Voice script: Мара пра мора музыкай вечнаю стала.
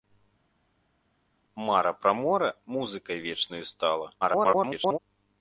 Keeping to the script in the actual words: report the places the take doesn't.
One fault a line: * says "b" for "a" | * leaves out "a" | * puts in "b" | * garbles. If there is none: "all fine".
* garbles